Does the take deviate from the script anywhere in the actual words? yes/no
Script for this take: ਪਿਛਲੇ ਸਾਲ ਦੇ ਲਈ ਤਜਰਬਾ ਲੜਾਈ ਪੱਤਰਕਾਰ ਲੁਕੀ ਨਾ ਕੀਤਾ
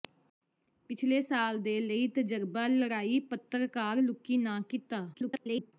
yes